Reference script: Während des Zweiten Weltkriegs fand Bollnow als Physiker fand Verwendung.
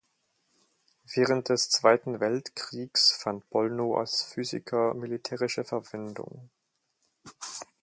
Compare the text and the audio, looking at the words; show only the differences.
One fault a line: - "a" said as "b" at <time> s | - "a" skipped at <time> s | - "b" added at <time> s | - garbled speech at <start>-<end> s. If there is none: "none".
- "fand" said as "militärische" at 4.9 s